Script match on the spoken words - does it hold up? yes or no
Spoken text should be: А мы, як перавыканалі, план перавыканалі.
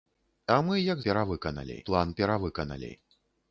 yes